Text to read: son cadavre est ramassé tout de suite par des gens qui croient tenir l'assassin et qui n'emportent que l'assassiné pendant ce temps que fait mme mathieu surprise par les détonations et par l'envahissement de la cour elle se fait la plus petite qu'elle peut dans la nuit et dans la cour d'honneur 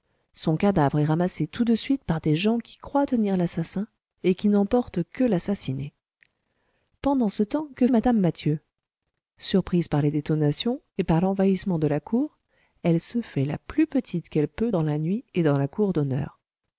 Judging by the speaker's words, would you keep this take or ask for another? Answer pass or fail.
fail